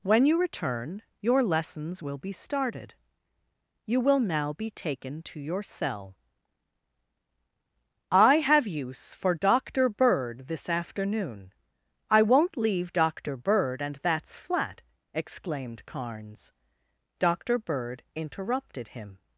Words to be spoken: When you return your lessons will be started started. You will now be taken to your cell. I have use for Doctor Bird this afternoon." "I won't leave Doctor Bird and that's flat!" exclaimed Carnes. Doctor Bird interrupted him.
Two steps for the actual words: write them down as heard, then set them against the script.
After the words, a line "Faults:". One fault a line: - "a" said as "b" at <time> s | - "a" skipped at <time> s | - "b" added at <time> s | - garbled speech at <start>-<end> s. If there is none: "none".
When you return your lessons will be started. You will now be taken to your cell. I have use for Doctor Bird this afternoon." "I won't leave Doctor Bird and that's flat!" exclaimed Carnes. Doctor Bird interrupted him.
Faults:
- "started" skipped at 2.9 s